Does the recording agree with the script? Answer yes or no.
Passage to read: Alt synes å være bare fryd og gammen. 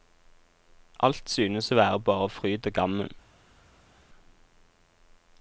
yes